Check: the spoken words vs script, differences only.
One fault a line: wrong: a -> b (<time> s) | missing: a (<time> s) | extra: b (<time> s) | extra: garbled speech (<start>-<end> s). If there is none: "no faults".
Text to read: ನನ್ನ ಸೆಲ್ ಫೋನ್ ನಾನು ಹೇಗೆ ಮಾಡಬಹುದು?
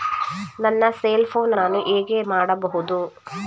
no faults